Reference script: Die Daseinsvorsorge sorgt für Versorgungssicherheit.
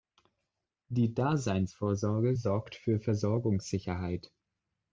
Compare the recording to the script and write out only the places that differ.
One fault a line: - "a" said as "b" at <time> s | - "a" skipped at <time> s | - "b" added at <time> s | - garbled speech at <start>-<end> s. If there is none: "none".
none